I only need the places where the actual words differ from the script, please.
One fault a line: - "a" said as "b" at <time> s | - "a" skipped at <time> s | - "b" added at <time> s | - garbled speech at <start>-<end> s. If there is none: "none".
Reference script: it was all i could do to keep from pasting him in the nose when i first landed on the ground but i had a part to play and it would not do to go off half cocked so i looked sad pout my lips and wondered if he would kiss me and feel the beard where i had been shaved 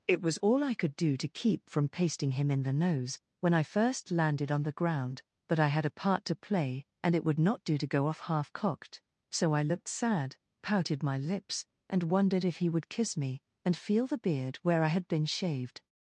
- "pout" said as "pouted" at 10.6 s